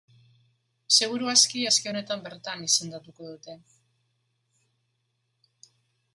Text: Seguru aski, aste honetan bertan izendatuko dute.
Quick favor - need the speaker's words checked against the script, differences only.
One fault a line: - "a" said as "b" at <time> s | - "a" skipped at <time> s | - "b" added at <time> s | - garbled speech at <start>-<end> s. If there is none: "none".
none